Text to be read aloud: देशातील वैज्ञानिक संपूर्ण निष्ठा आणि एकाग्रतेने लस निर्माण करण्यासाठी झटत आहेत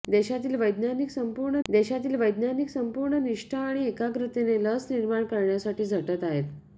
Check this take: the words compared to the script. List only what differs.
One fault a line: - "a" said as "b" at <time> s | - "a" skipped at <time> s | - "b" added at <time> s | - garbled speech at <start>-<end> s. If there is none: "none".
- "देशातील वैज्ञानिक संपूर्ण" added at 1.7 s